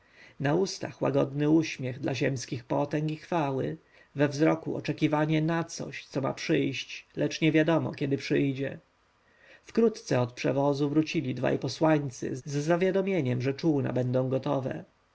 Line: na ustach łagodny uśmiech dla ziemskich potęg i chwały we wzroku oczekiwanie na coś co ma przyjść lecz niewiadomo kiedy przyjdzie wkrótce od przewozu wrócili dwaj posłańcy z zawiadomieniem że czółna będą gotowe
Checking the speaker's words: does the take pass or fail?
pass